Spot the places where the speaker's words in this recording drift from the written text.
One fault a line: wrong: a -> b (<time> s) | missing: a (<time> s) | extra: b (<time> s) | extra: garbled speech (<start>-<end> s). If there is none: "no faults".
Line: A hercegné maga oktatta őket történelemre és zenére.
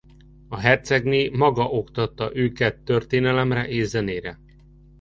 no faults